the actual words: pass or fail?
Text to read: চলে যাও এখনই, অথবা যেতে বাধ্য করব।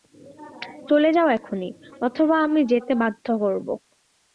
fail